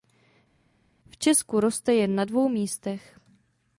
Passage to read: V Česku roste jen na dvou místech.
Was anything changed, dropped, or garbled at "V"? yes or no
no